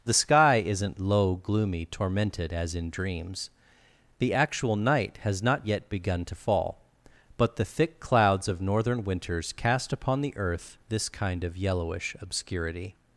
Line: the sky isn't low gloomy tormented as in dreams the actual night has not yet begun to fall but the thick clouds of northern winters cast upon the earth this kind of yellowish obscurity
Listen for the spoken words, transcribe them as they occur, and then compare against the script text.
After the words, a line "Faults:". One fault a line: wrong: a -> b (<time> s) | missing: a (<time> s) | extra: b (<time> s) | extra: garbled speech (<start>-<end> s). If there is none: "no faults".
the sky isn't low gloomy tormented as in dreams the actual night has not yet begun to fall but the thick clouds of northern winters cast upon the earth this kind of yellowish obscurity
Faults:
no faults